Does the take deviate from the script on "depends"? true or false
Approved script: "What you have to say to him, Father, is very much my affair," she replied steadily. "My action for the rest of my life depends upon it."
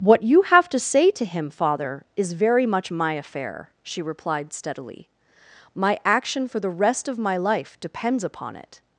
false